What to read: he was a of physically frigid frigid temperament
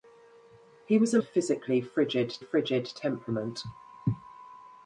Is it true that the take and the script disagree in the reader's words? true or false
false